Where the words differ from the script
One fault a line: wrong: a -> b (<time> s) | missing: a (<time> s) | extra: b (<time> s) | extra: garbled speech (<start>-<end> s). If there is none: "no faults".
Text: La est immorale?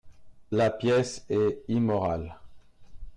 extra: pièce (0.7 s)